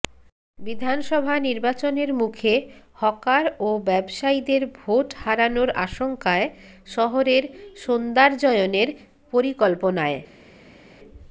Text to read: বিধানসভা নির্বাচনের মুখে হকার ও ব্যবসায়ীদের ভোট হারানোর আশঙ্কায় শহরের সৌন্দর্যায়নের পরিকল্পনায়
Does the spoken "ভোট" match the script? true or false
true